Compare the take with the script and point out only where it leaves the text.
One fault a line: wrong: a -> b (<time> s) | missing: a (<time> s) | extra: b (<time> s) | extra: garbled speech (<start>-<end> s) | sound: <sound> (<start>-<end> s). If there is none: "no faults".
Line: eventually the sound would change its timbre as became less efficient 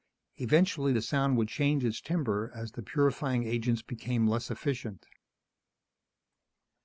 extra: the purifying agents (2.7 s)